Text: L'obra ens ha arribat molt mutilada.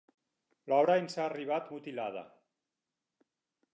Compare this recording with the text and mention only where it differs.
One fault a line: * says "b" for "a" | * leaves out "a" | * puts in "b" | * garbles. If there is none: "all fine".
* leaves out "molt"